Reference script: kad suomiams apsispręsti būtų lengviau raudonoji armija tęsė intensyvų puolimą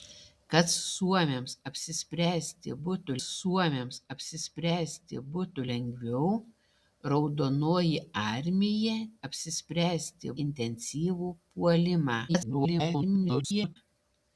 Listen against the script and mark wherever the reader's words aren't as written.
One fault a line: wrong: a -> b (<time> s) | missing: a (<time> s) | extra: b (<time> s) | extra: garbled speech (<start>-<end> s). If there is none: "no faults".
extra: suomiams apsispręsti būtų (3.2 s)
wrong: tęsė -> apsispręsti (9.3 s)
extra: garbled speech (12.3-13.8 s)